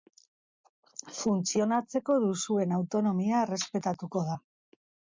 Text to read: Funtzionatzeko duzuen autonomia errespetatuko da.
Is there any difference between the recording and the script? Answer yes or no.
no